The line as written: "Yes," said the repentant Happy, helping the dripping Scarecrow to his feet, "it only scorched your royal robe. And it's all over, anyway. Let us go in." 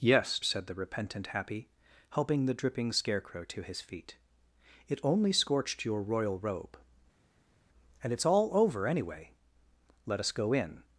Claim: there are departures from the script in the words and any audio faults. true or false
false